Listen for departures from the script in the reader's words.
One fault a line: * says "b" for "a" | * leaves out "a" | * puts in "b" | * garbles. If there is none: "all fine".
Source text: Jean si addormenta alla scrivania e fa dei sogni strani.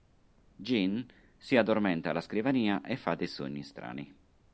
all fine